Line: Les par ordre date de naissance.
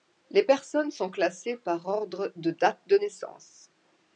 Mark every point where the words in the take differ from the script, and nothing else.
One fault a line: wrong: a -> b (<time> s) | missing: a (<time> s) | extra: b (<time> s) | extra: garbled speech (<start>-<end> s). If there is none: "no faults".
extra: personnes sont classées (0.4 s)
extra: de (2.4 s)